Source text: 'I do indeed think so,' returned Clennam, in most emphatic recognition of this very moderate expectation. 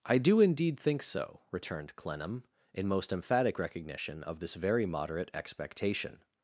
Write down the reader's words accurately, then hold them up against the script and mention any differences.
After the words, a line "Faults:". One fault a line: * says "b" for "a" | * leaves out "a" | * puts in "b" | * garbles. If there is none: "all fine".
'I do indeed think so,' returned Clennam, in most emphatic recognition of this very moderate expectation.
Faults:
all fine